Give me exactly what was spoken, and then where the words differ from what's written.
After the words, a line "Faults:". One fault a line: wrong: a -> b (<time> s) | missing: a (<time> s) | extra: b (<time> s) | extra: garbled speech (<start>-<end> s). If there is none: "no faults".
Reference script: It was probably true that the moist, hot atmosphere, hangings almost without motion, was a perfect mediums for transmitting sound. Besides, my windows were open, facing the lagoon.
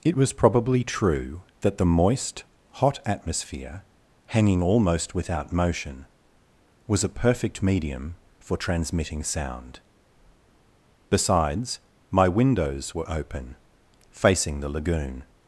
It was probably true that the moist, hot atmosphere, hanging almost without motion, was a perfect medium for transmitting sound. Besides, my windows were open, facing the lagoon.
Faults:
wrong: hangings -> hanging (4.3 s)
wrong: mediums -> medium (7.6 s)